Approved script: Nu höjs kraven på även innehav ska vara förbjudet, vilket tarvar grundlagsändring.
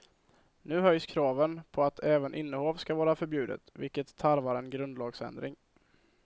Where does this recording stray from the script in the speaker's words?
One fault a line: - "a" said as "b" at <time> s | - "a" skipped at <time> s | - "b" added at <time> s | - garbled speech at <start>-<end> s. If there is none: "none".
- "att" added at 1.8 s
- "en" added at 4.5 s